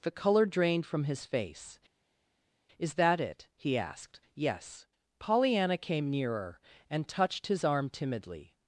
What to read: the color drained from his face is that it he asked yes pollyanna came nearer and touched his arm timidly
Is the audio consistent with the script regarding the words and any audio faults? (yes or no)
yes